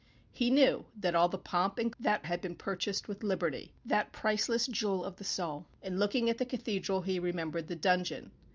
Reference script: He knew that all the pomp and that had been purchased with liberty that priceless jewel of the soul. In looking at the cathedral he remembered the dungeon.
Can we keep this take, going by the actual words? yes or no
yes